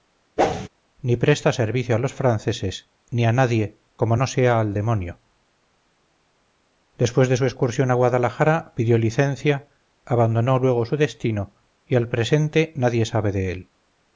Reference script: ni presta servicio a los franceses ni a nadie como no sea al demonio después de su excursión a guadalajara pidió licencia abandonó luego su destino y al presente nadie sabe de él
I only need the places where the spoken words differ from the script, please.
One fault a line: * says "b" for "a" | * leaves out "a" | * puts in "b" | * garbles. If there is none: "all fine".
all fine